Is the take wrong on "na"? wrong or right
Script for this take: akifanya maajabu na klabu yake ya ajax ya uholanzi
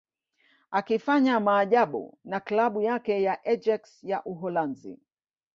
right